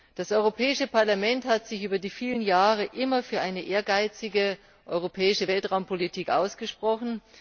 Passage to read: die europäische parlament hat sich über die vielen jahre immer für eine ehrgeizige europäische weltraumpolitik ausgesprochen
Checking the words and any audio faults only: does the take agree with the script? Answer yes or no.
no